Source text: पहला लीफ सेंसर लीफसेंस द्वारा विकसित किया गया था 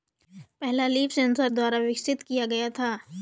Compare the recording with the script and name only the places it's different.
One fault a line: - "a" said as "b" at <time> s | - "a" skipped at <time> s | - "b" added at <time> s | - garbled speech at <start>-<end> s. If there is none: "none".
- "लीफसेंस" skipped at 1.5 s